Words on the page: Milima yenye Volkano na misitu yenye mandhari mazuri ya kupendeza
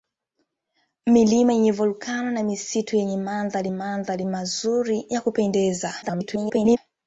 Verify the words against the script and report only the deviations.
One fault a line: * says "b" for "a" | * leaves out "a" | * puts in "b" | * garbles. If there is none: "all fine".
* puts in "mandhari"
* garbles